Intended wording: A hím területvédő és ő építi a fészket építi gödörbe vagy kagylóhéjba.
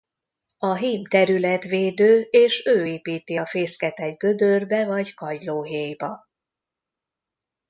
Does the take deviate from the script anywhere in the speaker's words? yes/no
yes